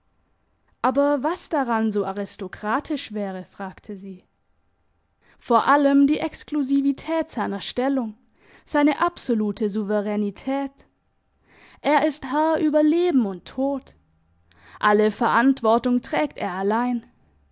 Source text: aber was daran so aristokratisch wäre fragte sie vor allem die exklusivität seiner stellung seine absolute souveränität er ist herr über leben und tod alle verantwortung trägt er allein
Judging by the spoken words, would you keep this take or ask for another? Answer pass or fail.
pass